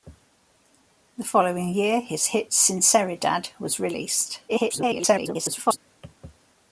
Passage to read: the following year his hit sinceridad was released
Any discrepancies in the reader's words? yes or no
yes